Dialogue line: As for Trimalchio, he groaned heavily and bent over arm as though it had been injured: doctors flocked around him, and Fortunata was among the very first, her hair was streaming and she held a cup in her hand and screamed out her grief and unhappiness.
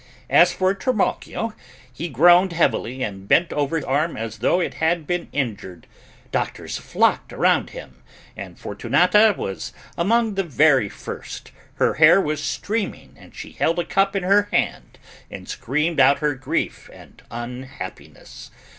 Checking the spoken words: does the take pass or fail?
pass